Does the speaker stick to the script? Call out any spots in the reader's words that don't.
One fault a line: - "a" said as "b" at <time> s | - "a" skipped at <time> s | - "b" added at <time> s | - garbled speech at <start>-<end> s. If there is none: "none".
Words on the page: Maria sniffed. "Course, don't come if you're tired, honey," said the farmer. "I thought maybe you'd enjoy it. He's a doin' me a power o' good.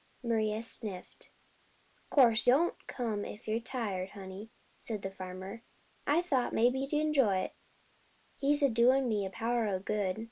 none